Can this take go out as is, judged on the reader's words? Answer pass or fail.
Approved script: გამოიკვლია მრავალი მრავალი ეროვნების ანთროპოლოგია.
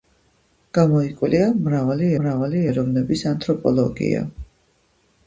pass